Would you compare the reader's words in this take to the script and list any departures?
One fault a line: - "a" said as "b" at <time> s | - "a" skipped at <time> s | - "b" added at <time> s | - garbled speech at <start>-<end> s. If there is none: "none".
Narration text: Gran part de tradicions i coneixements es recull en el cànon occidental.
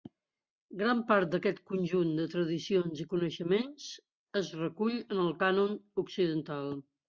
- "d'aquest conjunt" added at 1.4 s